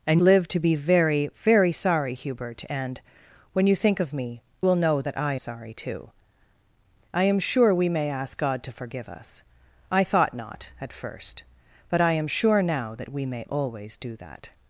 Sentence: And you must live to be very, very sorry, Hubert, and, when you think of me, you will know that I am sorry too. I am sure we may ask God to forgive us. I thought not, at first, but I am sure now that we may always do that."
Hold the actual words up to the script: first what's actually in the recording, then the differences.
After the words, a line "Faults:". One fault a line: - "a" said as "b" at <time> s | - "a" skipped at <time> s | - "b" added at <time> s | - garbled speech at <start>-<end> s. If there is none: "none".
And live to be very, very sorry, Hubert, and, when you think of me, will know that I sorry too. I am sure we may ask God to forgive us. I thought not, at first, but I am sure now that we may always do that."
Faults:
- "you must" skipped at 0.2 s
- "you" skipped at 4.4 s
- "am" skipped at 5.4 s